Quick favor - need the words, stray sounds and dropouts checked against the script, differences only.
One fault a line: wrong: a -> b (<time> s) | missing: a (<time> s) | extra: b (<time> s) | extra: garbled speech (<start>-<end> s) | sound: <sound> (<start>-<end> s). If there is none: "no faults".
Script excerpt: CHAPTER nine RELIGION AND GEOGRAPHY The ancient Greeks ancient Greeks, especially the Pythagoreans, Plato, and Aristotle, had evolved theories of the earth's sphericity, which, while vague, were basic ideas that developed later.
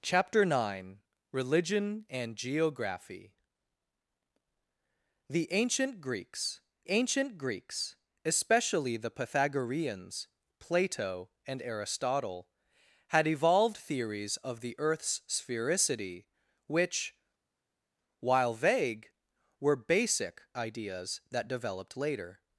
no faults